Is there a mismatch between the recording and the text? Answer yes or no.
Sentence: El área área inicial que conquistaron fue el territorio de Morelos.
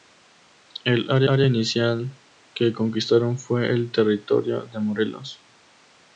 no